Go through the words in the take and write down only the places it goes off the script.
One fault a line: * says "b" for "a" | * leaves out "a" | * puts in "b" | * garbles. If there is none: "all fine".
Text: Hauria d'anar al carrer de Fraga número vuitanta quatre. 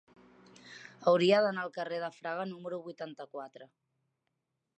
all fine